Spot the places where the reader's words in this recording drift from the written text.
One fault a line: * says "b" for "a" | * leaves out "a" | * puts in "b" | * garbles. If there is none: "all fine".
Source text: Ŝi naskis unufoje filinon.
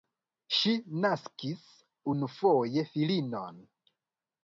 all fine